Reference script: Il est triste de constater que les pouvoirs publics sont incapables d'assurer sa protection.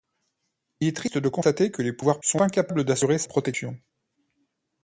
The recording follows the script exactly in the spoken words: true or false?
false